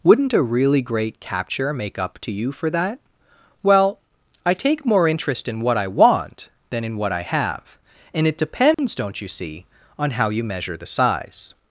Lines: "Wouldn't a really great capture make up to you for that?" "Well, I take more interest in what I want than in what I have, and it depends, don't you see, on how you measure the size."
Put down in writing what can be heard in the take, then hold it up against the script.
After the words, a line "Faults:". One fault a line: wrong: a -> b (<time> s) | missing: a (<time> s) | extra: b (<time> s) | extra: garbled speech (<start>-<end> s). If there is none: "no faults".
"Wouldn't a really great capture make up to you for that?" "Well, I take more interest in what I want than in what I have, and it depends, don't you see, on how you measure the size."
Faults:
no faults